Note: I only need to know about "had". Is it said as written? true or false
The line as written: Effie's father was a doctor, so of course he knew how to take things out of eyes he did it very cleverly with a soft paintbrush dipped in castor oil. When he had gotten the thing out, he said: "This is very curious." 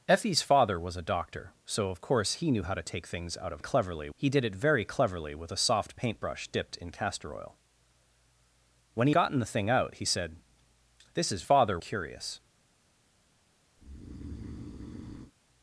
false